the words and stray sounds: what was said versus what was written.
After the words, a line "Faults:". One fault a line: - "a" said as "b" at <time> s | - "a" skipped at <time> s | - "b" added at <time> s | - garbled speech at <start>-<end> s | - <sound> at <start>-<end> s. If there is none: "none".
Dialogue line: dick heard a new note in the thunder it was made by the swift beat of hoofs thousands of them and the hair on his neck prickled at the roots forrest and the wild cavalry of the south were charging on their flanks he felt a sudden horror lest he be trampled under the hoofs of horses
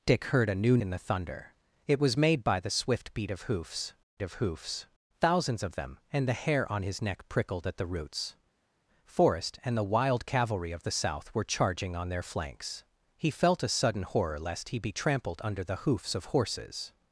dick heard a new in the thunder it was made by the swift beat of hoofs of hoofs thousands of them and the hair on his neck prickled at the roots forrest and the wild cavalry of the south were charging on their flanks he felt a sudden horror lest he be trampled under the hoofs of horses
Faults:
- "note" skipped at 0.8 s
- "of hoofs" added at 4.2 s